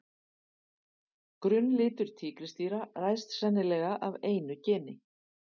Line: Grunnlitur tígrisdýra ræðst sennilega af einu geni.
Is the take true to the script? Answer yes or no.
yes